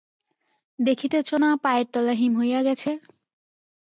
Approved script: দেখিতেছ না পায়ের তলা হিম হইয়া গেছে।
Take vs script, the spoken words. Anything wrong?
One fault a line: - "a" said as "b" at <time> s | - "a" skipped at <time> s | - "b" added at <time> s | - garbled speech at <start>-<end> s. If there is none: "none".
none